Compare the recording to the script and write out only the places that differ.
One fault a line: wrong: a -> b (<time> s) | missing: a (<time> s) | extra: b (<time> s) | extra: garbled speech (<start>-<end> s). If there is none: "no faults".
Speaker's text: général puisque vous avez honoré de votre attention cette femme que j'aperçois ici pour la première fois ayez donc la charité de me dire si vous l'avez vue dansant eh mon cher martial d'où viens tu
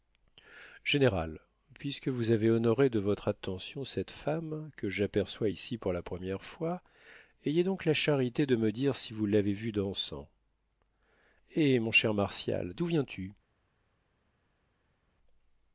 no faults